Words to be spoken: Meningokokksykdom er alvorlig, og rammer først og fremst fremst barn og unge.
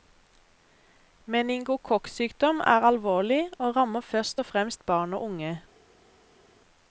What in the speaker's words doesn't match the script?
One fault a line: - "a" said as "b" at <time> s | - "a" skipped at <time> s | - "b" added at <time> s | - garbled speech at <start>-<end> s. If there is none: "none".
- "fremst" skipped at 4.8 s